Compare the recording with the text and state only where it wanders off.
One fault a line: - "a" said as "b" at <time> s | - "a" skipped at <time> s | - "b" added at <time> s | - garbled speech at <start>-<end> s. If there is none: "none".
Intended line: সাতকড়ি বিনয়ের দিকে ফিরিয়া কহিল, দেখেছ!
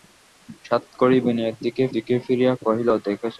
- "দিকে" added at 1.9 s